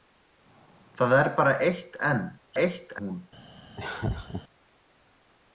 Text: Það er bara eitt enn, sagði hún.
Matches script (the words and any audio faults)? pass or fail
fail